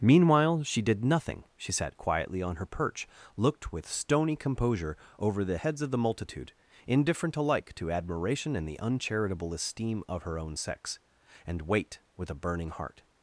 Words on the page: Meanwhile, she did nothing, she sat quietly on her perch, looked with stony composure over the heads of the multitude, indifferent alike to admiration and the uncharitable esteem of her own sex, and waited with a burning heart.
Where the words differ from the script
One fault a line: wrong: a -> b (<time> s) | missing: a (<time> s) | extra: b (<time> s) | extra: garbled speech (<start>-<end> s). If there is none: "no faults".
wrong: waited -> wait (11.6 s)